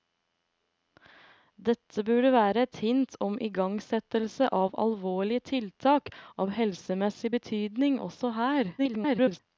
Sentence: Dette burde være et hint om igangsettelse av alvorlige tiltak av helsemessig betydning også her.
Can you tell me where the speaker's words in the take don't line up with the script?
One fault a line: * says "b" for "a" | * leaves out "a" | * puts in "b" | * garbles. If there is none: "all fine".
* garbles